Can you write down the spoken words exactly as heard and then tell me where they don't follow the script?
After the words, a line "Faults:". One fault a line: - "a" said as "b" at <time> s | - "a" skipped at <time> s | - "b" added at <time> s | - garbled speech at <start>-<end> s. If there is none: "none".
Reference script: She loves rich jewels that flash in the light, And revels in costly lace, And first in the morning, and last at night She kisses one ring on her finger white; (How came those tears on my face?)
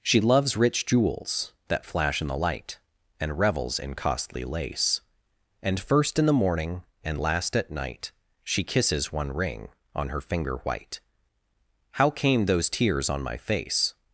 She loves rich jewels that flash in the light, And revels in costly lace, And first in the morning, and last at night She kisses one ring on her finger white; (How came those tears on my face?)
Faults:
none